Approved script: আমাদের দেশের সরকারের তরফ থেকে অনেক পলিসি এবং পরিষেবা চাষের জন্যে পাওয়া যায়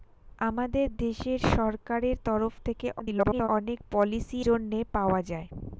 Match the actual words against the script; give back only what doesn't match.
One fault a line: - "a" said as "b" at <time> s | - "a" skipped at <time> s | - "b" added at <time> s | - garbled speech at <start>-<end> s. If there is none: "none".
- garbled speech at 3.0-3.5 s
- "এবং পরিষেবা চাষের" skipped at 4.4 s